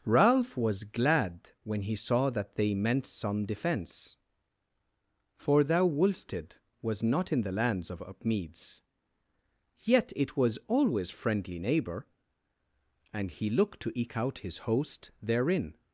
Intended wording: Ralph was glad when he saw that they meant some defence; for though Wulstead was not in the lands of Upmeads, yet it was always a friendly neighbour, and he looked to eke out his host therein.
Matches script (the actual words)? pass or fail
fail